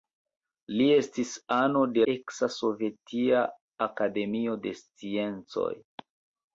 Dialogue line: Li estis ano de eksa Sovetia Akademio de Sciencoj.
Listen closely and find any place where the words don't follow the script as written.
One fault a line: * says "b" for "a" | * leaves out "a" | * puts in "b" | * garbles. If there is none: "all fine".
all fine